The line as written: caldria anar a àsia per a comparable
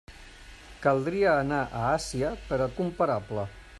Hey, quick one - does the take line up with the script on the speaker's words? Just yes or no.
yes